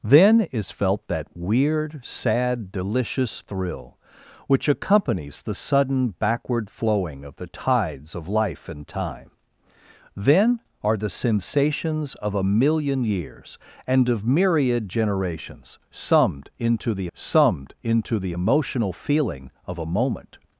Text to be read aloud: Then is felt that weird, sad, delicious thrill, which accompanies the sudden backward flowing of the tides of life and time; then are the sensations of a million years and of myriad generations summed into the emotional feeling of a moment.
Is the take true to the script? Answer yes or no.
no